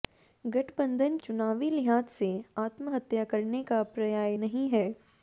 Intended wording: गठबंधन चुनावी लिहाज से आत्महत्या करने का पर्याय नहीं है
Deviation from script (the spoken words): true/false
false